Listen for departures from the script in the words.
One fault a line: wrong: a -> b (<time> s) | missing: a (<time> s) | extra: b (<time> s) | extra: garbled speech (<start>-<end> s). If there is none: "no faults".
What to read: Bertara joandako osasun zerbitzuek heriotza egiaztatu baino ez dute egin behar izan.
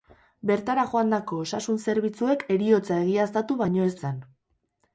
missing: dute egin behar (3.9 s)